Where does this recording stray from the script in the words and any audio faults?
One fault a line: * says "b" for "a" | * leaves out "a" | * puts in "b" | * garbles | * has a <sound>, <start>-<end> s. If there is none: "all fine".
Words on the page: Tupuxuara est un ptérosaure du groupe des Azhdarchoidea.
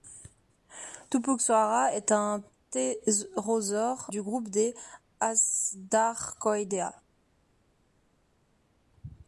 all fine